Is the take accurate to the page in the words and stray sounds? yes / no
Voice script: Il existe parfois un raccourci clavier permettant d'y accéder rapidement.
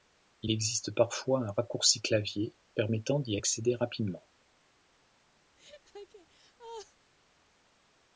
no